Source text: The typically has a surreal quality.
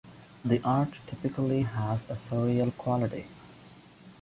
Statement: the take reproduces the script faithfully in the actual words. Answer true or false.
false